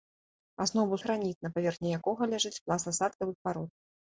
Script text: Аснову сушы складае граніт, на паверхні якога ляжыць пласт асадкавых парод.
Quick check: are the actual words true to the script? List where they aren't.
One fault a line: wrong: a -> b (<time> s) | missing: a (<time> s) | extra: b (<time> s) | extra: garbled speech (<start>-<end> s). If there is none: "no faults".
missing: сушы складае (1.0 s)